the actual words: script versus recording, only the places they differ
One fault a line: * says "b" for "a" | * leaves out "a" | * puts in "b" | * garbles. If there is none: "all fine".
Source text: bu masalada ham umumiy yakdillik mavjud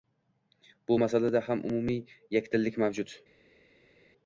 all fine